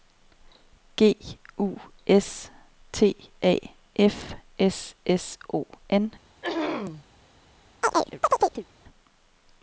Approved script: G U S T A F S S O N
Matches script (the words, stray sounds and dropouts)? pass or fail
fail